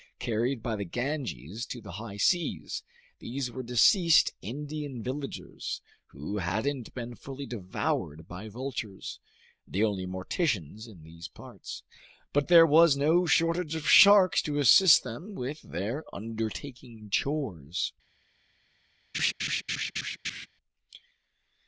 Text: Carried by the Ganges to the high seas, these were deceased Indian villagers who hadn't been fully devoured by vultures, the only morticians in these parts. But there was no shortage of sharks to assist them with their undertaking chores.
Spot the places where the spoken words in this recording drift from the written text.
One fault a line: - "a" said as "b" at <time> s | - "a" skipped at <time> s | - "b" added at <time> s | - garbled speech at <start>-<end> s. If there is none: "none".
none